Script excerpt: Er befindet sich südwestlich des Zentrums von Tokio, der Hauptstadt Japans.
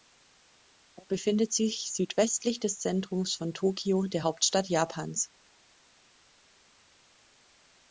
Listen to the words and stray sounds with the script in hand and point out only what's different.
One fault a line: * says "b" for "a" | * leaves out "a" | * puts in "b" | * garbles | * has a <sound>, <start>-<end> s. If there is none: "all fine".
all fine